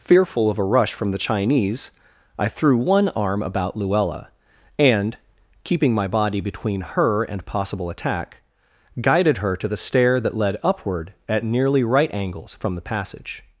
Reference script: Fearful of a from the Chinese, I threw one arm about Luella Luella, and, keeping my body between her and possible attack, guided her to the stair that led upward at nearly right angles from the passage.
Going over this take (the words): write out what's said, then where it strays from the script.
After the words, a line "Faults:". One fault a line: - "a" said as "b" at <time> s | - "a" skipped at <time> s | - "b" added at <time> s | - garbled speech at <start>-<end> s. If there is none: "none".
Fearful of a rush from the Chinese, I threw one arm about Luella, and, keeping my body between her and possible attack, guided her to the stair that led upward at nearly right angles from the passage.
Faults:
- "rush" added at 0.6 s
- "Luella" skipped at 4.3 s